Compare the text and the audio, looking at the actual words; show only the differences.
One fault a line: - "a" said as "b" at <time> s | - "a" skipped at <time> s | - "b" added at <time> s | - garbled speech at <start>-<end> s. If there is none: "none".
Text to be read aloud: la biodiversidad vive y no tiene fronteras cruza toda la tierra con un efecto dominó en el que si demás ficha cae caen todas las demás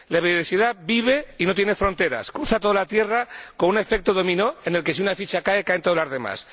- "demás" said as "una" at 5.0 s